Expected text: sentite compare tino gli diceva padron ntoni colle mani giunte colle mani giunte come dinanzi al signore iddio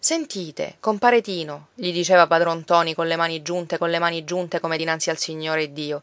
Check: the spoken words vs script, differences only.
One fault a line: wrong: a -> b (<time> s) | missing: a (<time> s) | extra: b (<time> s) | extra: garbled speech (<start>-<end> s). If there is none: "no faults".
no faults